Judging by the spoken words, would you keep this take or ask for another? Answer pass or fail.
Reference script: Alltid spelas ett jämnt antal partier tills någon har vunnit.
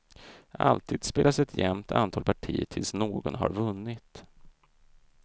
pass